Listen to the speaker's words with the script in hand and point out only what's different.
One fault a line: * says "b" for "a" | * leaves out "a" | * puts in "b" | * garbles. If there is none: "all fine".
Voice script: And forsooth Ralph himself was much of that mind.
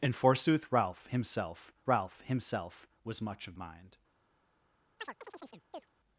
* puts in "Ralph himself"
* leaves out "that"